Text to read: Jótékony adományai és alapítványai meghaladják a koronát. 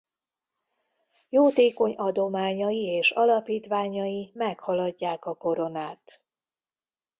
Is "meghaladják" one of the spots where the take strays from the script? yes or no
no